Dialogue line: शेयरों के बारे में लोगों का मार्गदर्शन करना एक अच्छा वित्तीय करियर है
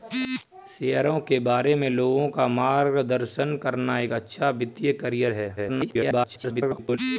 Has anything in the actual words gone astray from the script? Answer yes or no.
yes